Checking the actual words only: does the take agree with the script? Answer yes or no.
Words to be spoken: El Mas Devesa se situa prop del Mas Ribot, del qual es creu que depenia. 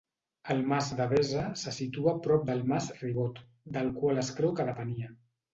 yes